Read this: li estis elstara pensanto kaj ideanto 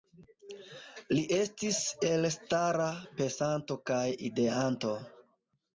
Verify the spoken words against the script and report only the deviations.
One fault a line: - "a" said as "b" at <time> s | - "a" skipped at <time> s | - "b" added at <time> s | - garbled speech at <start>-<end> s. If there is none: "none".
none